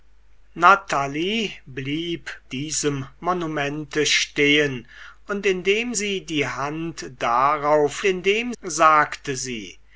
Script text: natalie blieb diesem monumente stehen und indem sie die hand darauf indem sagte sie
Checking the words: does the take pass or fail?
pass